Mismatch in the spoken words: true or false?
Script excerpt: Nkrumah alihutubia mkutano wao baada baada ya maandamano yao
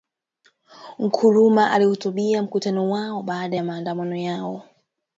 true